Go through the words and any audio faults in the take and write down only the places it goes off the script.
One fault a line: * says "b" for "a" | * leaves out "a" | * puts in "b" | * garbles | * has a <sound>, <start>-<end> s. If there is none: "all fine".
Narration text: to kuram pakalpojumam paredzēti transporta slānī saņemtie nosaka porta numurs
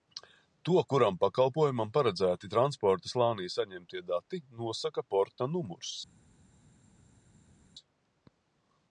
* puts in "dati"